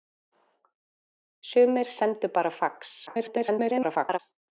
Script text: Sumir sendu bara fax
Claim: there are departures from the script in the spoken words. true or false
true